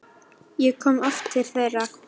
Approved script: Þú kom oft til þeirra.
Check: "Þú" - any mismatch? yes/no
yes